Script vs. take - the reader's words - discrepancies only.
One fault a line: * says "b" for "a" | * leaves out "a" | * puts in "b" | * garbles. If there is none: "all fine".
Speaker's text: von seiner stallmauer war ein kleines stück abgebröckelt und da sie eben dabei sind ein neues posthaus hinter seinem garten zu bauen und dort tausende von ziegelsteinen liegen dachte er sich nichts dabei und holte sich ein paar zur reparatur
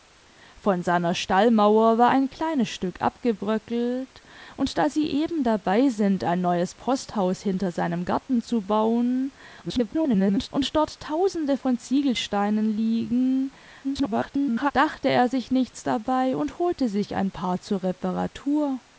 * garbles
* garbles